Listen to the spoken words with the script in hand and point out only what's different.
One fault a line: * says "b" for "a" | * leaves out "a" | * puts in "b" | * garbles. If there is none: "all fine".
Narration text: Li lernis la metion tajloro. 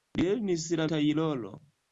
* leaves out "metion"